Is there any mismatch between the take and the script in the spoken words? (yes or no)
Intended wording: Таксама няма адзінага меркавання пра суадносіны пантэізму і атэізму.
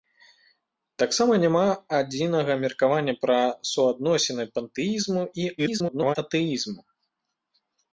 yes